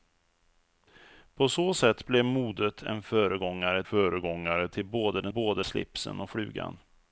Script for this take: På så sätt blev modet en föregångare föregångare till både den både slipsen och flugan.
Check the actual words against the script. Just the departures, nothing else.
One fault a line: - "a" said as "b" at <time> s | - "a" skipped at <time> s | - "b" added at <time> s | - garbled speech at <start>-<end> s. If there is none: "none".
none